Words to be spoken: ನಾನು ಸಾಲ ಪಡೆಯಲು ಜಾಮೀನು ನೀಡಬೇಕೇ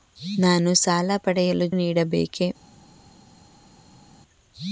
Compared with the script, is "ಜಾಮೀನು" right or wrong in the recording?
wrong